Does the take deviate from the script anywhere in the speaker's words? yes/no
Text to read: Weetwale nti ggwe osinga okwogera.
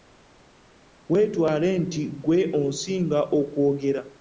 no